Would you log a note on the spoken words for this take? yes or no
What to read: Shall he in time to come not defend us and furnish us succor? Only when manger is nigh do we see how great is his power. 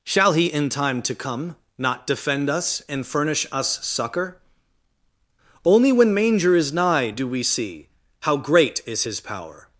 no